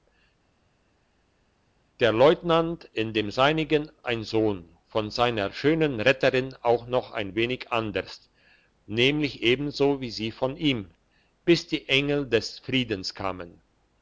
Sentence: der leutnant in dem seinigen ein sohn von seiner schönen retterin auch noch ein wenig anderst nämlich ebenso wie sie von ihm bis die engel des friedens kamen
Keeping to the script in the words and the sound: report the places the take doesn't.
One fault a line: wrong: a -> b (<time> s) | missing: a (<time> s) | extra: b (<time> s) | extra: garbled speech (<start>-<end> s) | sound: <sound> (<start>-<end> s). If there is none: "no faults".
no faults